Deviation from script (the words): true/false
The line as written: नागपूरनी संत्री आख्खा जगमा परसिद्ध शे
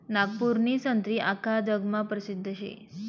false